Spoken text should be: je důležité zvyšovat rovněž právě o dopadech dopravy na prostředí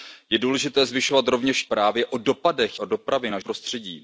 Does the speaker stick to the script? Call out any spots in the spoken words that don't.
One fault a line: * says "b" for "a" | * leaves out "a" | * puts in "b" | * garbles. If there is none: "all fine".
all fine